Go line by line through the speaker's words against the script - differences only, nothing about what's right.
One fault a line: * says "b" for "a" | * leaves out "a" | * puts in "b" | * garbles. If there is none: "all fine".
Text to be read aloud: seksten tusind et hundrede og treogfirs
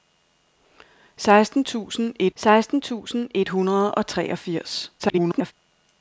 * puts in "seksten tusind et"
* garbles